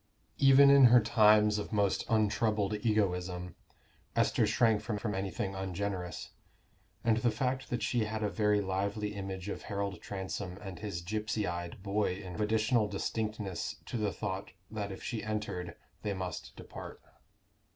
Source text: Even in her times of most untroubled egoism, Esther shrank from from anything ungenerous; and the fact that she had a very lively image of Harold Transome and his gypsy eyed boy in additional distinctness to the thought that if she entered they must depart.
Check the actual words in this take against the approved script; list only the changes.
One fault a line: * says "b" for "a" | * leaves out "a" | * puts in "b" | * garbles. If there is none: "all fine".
all fine